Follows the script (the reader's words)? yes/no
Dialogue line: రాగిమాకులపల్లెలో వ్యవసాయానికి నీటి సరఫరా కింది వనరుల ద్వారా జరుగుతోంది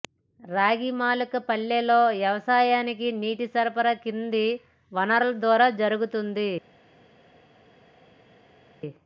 yes